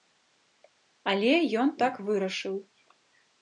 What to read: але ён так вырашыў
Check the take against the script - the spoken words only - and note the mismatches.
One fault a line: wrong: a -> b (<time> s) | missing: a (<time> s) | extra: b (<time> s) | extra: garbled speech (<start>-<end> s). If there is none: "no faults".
no faults